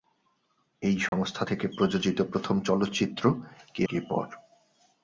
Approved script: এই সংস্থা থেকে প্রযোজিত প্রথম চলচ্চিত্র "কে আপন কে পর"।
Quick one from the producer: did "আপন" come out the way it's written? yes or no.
no